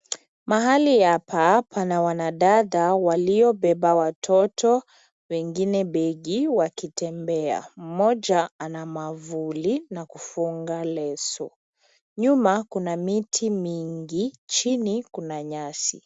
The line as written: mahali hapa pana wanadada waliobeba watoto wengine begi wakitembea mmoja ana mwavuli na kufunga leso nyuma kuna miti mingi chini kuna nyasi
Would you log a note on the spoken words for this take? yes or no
no